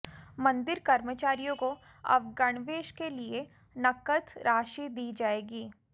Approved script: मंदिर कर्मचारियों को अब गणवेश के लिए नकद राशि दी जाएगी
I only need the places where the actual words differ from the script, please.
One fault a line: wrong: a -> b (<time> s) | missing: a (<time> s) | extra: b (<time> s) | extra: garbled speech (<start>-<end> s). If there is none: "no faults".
no faults